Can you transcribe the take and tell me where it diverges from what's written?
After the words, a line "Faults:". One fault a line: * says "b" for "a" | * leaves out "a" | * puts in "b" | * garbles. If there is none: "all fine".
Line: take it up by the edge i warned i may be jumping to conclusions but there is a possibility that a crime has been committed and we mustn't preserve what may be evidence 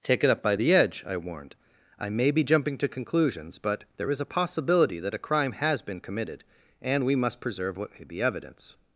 take it up by the edge i warned i may be jumping to conclusions but there is a possibility that a crime has been committed and we must preserve what may be evidence
Faults:
* says "must" for "mustn't"